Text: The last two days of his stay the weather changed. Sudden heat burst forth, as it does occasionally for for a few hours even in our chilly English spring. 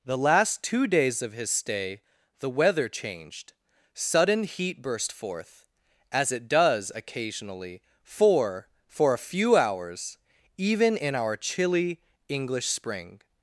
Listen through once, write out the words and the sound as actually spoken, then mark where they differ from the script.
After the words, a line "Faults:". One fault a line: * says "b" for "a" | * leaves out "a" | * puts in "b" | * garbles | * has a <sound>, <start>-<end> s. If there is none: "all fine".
The last two days of his stay the weather changed. Sudden heat burst forth, as it does occasionally for for a few hours even in our chilly English spring.
Faults:
all fine